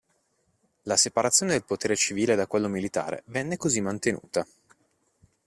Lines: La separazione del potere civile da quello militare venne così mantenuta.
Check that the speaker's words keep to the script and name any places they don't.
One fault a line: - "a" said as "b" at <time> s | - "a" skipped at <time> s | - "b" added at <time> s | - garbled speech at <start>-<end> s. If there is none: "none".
none